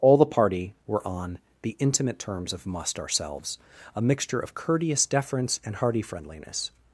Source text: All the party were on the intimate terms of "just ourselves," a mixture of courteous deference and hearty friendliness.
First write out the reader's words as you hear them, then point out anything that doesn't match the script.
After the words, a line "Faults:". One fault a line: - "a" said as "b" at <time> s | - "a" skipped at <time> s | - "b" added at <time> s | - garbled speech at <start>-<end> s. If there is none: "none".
All the party were on the intimate terms of "must ourselves," a mixture of courteous deference and hearty friendliness.
Faults:
- "just" said as "must" at 2.7 s